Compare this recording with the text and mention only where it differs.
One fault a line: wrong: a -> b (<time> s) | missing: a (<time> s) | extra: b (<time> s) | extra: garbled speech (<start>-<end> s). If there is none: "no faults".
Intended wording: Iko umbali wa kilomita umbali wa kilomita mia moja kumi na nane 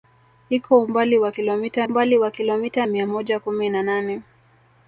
no faults